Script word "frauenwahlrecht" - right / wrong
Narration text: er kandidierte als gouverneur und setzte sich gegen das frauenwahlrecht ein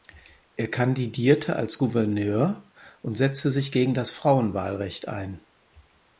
right